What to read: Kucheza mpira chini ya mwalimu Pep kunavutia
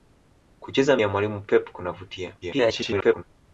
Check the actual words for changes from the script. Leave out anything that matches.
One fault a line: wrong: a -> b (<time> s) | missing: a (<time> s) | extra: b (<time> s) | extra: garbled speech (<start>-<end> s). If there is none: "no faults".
missing: mpira chini (1.0 s)
extra: garbled speech (2.4-3.2 s)